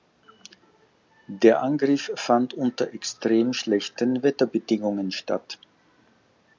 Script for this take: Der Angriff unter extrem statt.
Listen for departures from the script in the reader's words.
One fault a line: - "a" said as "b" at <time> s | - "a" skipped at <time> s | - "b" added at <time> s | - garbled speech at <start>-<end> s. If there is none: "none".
- "fand" added at 2.1 s
- "schlechten Wetterbedingungen" added at 3.5 s